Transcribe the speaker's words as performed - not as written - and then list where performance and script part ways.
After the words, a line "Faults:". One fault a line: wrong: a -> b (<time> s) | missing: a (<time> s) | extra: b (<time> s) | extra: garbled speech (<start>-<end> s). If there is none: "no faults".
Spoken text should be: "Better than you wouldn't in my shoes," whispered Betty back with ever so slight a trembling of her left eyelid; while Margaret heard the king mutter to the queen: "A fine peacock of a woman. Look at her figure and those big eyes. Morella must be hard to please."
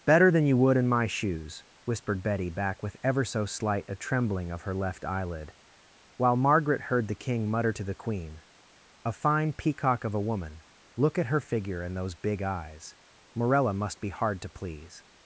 "Better than you would in my shoes," whispered Betty back with ever so slight a trembling of her left eyelid; while Margaret heard the king mutter to the queen: "A fine peacock of a woman. Look at her figure and those big eyes. Morella must be hard to please."
Faults:
wrong: wouldn't -> would (0.6 s)